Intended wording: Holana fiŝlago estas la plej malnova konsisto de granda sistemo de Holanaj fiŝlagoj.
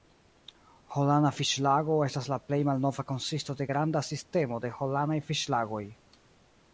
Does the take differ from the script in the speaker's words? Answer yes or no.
no